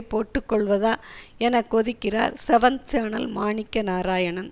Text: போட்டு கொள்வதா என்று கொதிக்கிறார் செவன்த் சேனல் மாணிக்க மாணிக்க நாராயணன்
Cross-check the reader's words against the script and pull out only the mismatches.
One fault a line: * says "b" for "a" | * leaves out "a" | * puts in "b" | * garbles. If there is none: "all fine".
* says "என" for "என்று"
* leaves out "மாணிக்க"